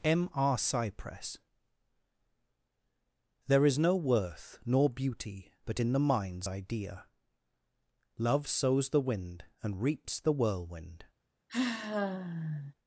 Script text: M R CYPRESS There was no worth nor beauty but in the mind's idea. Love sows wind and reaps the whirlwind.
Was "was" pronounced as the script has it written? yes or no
no